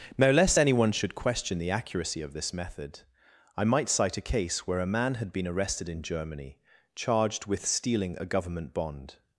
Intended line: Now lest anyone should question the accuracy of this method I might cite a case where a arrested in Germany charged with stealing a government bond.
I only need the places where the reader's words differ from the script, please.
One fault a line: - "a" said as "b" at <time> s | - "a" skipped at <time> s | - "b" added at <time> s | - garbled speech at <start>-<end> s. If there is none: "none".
- "man had been" added at 4.9 s